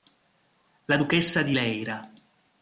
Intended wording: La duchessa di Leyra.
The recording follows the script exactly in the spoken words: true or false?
true